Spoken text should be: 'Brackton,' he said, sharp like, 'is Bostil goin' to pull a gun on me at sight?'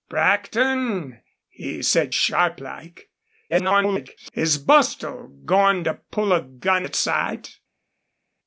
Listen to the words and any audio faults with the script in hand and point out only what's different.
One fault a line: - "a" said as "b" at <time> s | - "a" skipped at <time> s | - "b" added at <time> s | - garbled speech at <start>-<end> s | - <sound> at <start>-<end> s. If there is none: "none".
- garbled speech at 3.5-4.3 s
- "on me" skipped at 6.9 s